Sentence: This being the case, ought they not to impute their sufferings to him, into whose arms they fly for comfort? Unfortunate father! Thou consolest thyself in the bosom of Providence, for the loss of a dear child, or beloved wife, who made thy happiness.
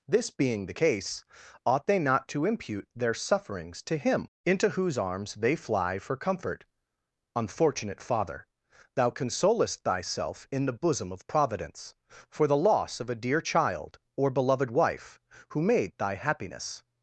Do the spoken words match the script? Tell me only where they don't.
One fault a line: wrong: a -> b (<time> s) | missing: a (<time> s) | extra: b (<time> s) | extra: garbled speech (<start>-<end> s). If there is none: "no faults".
no faults